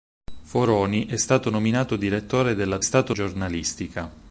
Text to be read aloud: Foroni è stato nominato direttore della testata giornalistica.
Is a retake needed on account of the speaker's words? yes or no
yes